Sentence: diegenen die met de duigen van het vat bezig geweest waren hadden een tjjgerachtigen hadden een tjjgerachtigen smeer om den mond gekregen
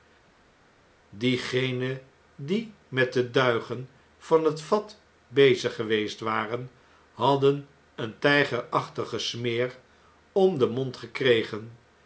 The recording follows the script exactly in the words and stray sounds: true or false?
false